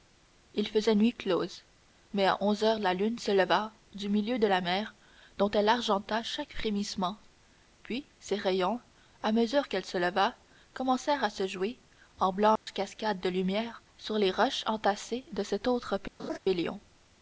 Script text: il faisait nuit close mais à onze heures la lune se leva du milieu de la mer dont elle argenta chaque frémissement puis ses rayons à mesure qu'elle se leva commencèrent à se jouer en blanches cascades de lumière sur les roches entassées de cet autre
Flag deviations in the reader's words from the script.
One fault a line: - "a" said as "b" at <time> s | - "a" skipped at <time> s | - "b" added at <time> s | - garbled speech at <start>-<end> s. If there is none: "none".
none